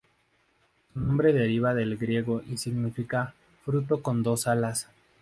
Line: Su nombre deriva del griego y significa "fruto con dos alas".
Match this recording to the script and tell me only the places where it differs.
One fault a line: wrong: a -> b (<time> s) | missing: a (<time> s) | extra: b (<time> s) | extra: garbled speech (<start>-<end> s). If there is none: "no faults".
no faults